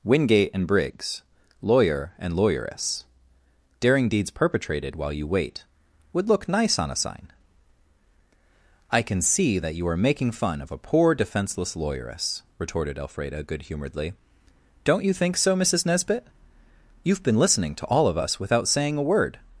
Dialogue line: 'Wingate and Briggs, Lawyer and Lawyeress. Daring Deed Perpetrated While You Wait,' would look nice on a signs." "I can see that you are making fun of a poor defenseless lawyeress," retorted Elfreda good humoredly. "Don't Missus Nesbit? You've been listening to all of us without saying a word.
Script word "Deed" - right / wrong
wrong